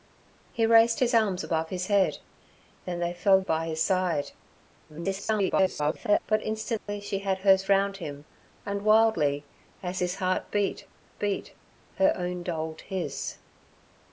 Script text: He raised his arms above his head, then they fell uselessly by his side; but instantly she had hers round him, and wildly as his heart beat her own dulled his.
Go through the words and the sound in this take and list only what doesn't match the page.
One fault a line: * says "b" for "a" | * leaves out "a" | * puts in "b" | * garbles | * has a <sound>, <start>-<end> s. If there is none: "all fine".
* leaves out "uselessly"
* garbles
* has a dropout, 6.8-6.9 s
* puts in "beat"